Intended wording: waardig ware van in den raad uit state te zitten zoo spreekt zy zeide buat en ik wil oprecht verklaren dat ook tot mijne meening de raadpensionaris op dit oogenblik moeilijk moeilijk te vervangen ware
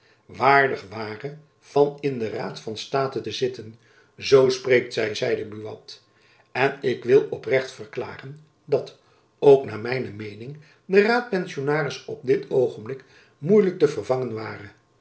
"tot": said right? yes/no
no